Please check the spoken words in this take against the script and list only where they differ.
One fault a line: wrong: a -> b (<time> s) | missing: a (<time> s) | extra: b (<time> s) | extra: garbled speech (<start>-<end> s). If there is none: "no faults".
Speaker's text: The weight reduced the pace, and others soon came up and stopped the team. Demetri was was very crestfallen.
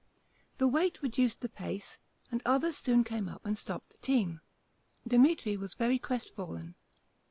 missing: was (5.7 s)